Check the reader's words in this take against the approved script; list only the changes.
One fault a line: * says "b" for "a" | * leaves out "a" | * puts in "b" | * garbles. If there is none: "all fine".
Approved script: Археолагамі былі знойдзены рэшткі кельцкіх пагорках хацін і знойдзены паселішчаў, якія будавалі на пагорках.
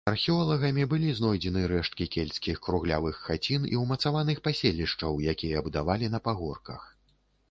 * says "круглявых" for "пагорках"
* says "ўмацаваных" for "знойдзены"